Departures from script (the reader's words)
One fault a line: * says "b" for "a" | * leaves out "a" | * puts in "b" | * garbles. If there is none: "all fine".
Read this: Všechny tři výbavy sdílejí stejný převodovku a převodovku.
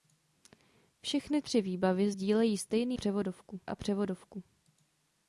all fine